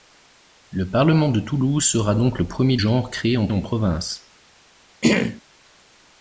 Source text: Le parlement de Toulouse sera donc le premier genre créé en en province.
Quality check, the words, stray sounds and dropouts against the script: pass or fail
fail